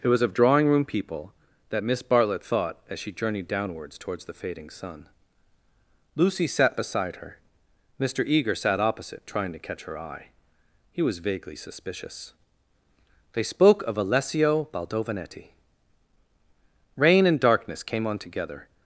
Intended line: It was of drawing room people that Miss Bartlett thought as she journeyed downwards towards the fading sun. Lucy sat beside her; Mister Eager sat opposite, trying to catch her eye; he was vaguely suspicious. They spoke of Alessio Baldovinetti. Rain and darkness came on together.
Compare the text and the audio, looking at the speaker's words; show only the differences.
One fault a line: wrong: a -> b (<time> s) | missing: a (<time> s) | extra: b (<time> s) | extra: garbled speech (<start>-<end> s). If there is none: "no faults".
no faults